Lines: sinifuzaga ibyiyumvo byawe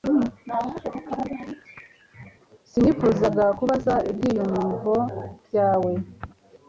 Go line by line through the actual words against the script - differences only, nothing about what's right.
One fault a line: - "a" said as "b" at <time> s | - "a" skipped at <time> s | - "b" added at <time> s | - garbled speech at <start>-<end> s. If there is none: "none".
- "kubabaza" added at 3.6 s